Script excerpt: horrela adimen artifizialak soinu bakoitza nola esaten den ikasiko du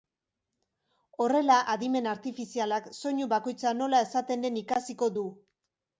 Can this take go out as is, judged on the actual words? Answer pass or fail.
pass